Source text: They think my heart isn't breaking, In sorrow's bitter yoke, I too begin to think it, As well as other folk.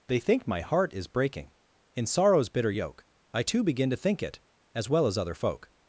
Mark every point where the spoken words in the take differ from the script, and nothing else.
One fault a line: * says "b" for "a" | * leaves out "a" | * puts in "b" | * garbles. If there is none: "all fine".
* says "is" for "isn't"